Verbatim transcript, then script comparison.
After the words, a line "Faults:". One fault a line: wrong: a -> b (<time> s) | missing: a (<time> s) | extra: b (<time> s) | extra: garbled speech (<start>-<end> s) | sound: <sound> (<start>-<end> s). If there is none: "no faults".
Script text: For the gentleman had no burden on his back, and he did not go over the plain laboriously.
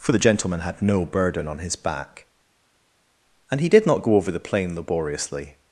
For the gentleman had no burden on his back, and he did not go over the plain laboriously.
Faults:
no faults